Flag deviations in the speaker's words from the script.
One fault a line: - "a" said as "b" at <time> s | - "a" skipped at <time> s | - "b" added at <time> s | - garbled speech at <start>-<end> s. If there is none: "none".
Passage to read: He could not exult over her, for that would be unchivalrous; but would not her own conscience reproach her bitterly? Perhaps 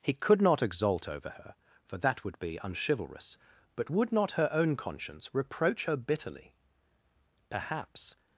none